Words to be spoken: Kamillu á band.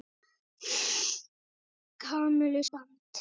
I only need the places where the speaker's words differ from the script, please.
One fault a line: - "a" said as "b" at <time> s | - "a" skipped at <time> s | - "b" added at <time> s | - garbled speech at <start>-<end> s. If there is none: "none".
none